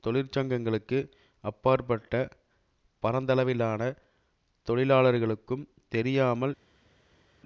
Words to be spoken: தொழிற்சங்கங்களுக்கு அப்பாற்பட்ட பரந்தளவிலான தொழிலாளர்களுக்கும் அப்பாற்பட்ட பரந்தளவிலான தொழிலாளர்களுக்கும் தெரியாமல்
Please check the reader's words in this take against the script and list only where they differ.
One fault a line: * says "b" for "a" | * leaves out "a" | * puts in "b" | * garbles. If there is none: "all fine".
* leaves out "அப்பாற்பட்ட பரந்தளவிலான தொழிலாளர்களுக்கும்"